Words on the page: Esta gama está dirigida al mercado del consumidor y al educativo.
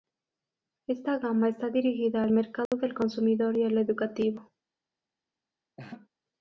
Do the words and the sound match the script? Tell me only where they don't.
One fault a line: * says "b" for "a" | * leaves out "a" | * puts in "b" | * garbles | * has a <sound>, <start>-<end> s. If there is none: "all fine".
* has a dropout, 2.7-2.7 s
* has a laugh, 5.8-6.1 s